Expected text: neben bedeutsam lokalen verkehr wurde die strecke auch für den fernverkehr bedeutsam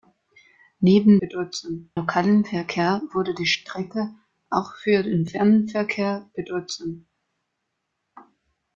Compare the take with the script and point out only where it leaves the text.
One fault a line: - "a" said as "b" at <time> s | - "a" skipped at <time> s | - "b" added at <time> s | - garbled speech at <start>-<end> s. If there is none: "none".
none